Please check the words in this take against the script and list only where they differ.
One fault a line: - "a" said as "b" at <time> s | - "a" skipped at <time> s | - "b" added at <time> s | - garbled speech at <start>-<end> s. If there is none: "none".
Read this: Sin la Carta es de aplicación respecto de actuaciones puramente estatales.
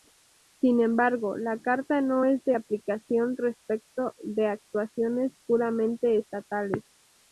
- "embargo" added at 0.8 s
- "no" added at 2.0 s